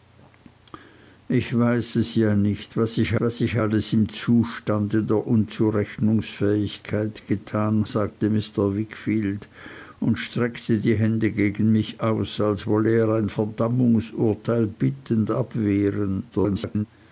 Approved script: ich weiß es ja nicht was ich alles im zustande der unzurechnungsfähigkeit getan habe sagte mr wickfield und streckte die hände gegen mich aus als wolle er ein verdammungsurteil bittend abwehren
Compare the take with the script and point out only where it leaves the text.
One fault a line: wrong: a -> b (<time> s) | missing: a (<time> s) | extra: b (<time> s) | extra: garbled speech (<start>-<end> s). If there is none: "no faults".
extra: was ich (3.2 s)
missing: habe (7.9 s)
extra: garbled speech (16.3-16.9 s)